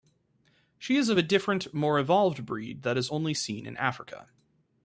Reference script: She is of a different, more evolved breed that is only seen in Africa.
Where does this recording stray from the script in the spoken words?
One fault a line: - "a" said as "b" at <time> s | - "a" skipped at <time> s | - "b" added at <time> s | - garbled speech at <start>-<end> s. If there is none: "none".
none